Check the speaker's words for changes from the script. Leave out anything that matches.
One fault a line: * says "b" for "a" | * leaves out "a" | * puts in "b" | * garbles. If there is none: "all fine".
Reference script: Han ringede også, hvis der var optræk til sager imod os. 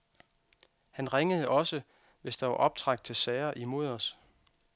all fine